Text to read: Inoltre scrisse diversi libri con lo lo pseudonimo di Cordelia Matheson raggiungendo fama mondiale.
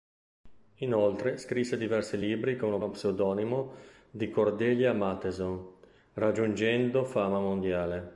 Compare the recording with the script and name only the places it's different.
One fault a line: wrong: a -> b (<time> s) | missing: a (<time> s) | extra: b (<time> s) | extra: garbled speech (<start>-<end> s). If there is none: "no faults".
no faults